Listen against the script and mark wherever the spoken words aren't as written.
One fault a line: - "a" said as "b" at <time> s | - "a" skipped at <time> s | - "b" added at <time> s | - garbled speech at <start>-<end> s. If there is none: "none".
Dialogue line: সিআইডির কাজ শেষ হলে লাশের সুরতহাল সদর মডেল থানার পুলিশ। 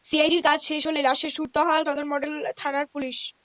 none